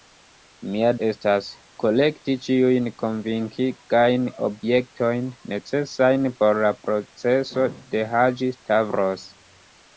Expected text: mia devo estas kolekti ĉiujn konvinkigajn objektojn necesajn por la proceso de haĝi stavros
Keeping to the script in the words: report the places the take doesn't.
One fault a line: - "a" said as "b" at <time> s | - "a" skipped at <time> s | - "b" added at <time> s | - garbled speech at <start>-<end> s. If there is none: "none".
- "devo" skipped at 0.9 s